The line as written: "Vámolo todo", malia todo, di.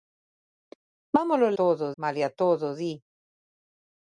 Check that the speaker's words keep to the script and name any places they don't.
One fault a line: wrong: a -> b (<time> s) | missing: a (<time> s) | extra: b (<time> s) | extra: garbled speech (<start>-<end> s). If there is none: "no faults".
no faults